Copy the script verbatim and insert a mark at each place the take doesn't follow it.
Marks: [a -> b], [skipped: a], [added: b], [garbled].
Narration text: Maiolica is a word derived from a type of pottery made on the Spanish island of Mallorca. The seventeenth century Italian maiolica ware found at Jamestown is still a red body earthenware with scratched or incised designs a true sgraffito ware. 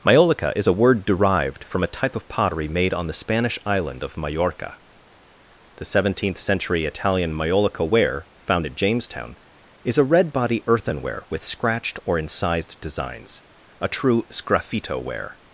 Maiolica is a word derived from a type of pottery made on the Spanish island of Mallorca. The seventeenth century Italian maiolica ware found at Jamestown is [skipped: still] a red body earthenware with scratched or incised designs a true sgraffito ware.